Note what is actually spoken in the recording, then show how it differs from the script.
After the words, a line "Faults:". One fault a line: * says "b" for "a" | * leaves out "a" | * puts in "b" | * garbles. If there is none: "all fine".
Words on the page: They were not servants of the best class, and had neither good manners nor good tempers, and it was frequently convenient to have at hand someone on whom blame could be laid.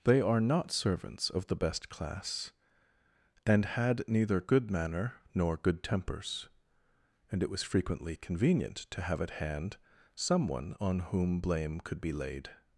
They are not servants of the best class, and had neither good manner nor good tempers, and it was frequently convenient to have at hand someone on whom blame could be laid.
Faults:
* says "are" for "were"
* says "manner" for "manners"